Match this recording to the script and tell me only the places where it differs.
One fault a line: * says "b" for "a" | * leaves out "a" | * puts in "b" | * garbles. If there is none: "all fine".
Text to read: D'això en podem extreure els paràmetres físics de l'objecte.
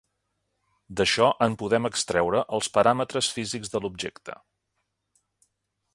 all fine